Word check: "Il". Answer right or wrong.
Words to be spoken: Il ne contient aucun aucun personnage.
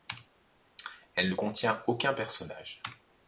wrong